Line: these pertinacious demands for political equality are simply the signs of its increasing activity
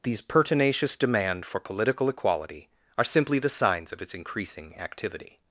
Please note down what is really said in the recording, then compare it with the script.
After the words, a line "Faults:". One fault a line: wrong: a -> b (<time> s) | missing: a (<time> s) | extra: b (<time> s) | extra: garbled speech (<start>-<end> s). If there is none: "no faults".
these pertinacious demand for political equality are simply the signs of its increasing activity
Faults:
wrong: demands -> demand (0.9 s)